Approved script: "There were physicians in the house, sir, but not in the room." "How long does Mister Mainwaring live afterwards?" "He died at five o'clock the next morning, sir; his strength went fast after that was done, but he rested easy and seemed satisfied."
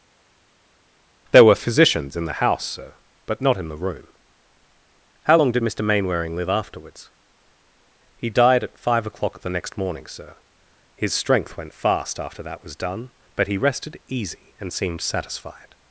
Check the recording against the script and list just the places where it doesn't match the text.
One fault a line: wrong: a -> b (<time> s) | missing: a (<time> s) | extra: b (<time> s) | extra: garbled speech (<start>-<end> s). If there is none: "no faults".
wrong: does -> did (5.5 s)